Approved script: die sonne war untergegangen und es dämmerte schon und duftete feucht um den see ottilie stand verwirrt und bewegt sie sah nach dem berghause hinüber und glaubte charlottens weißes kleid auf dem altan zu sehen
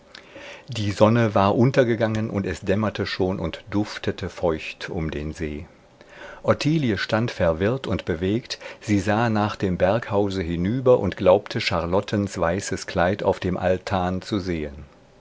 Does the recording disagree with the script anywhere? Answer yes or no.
no